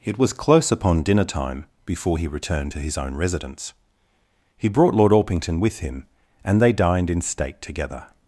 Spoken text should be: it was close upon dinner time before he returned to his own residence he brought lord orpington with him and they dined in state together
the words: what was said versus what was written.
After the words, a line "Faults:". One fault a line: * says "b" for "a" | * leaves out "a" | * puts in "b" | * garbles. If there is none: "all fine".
it was close upon dinner time before he returned to his own residence he brought lord orpington with him and they dined in state together
Faults:
all fine